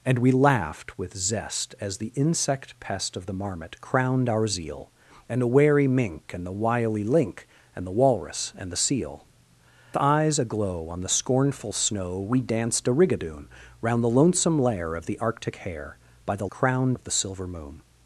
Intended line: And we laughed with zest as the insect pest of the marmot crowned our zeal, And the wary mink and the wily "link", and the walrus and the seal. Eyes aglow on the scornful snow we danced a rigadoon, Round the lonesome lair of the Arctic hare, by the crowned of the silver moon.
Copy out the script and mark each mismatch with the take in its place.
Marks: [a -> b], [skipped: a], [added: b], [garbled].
And we laughed with zest as the insect pest of the marmot crowned our zeal, And the wary mink and the wily "link", and the walrus and the seal. Eyes aglow on the scornful snow we danced a rigadoon, Round the lonesome lair of the Arctic hare, by the crowned of the silver moon.